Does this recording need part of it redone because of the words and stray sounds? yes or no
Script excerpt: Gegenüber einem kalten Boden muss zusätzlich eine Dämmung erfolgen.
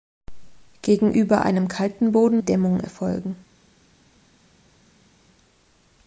yes